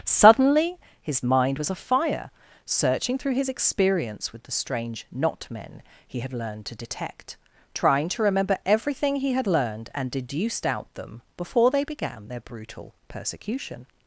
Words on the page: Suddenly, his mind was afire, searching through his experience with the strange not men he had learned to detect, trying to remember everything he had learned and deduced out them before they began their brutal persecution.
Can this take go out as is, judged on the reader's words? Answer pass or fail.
pass